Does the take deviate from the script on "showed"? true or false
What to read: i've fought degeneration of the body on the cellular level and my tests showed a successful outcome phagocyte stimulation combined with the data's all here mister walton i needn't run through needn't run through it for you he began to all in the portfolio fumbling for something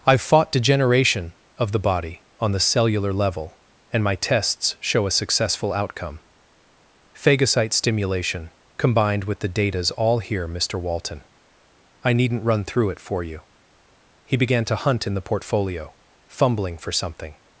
true